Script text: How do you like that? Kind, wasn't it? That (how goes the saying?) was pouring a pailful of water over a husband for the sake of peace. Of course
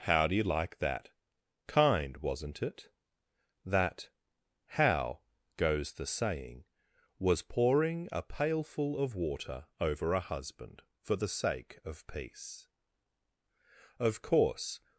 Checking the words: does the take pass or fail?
pass